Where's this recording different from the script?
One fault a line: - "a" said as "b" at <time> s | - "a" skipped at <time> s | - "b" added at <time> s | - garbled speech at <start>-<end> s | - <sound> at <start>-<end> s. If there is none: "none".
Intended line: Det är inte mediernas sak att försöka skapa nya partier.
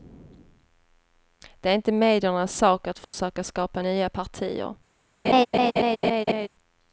- dropout at 3.0-3.1 s
- laugh at 5.2-6.5 s